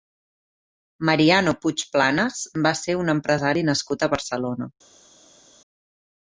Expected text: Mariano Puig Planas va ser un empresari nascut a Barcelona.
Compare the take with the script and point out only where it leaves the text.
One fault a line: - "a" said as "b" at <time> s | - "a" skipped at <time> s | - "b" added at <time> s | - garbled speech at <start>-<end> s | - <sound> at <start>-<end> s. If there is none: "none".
none